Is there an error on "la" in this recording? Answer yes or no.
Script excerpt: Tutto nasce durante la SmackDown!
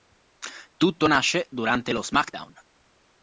yes